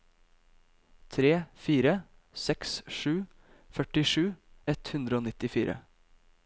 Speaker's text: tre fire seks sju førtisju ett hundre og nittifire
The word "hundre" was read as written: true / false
true